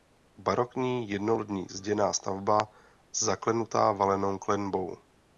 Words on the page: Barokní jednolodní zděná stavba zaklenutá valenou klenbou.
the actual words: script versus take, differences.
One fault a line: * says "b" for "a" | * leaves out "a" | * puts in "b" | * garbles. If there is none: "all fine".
all fine